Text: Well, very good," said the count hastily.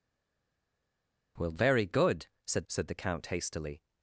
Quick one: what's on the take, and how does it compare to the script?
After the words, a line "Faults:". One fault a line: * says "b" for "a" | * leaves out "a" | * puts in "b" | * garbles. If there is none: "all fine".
Well, very good," said said the count hastily.
Faults:
* puts in "said"